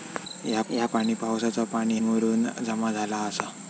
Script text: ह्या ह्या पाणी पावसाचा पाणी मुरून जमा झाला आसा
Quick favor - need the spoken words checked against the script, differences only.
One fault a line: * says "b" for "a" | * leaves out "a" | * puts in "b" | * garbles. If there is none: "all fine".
all fine